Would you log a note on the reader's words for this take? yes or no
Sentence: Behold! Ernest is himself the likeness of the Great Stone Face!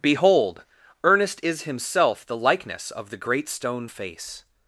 no